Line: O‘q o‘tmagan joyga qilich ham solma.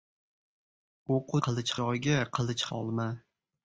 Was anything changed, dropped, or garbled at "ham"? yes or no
yes